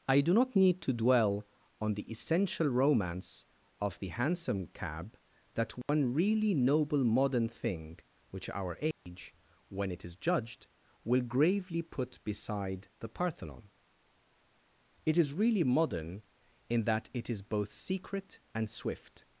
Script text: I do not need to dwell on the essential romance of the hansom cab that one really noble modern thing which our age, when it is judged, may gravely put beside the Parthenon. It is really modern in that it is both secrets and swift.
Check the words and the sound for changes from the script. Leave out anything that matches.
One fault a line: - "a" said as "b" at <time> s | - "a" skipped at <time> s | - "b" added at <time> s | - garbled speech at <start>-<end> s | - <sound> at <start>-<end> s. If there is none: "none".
- dropout at 5.8-5.9 s
- dropout at 8.9-9.1 s
- "may" said as "will" at 11.0 s
- "secrets" said as "secret" at 17.7 s